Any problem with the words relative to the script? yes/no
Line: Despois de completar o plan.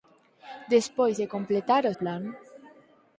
no